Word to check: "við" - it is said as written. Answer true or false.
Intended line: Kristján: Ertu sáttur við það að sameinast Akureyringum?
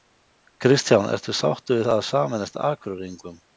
true